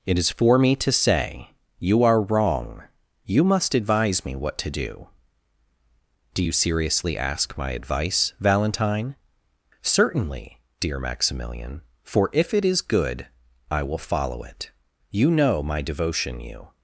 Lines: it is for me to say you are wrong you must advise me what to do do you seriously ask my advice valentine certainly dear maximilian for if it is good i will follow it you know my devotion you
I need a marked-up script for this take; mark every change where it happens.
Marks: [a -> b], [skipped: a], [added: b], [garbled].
it is for me to say you are wrong you must advise me what to do do you seriously ask my advice valentine certainly dear maximilian for if it is good i will follow it you know my devotion you